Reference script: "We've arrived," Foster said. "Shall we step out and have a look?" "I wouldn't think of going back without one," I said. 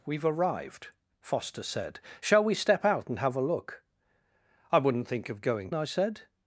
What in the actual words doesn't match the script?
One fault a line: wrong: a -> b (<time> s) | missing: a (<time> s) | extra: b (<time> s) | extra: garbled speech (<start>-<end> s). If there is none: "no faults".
missing: back without one (5.7 s)